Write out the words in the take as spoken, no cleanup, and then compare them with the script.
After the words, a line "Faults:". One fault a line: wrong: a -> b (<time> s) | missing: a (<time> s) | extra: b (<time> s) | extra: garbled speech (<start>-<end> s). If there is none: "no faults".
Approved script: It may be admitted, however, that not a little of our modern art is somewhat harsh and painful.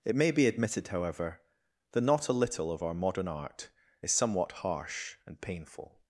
It may be admitted, however, that not a little of our modern art is somewhat harsh and painful.
Faults:
no faults